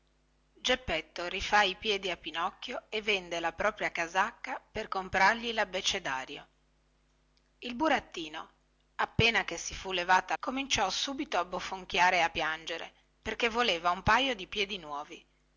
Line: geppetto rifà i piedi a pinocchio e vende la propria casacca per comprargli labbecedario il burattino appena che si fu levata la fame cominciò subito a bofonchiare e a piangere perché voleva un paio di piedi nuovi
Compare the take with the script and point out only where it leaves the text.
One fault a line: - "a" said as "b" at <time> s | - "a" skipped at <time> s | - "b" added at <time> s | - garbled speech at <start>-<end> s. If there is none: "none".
- "la fame" skipped at 10.3 s